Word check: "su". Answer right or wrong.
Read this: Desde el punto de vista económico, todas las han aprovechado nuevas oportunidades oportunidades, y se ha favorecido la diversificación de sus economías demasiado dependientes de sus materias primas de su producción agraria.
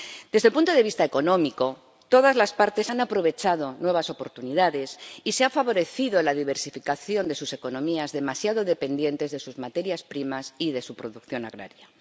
right